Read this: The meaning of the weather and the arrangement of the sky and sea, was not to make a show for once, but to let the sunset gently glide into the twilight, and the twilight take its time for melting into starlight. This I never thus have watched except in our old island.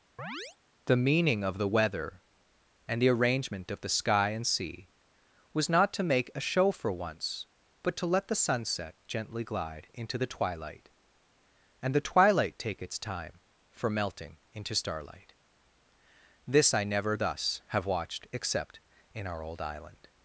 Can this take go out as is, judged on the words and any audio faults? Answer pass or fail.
fail